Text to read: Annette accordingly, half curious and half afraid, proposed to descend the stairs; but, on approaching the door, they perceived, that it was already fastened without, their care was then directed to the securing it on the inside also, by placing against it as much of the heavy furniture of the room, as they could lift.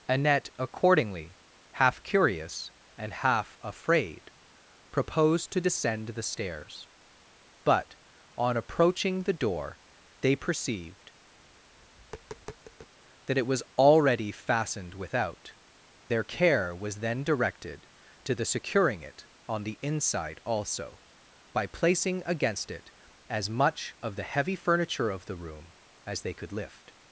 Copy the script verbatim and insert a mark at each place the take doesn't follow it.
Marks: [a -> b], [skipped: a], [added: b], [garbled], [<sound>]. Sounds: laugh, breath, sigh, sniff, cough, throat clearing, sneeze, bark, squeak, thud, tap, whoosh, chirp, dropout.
Annette accordingly, half curious and half afraid, proposed to descend the stairs; but, on approaching the door, they perceived, [tap] that it was already fastened without, their care was then directed to the securing it on the inside also, by placing against it as much of the heavy furniture of the room, as they could lift.